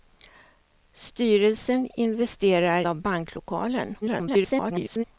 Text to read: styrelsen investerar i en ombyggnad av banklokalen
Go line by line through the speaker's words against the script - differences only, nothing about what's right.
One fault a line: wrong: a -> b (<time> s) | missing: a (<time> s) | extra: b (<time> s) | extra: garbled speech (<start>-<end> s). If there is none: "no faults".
missing: i en ombyggnad (2.8 s)
extra: garbled speech (4.0-5.0 s)